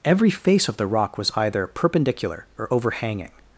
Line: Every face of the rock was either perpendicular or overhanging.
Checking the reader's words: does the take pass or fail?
pass